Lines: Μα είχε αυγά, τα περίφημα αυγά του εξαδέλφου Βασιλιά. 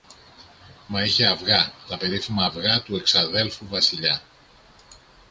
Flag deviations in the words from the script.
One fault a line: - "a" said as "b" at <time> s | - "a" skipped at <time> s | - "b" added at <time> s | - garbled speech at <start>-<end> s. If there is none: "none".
none